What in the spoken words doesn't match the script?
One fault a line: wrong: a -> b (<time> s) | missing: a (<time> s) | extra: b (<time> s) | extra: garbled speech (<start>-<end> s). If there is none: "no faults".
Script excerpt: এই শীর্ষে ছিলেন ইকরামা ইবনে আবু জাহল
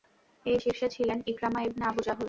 no faults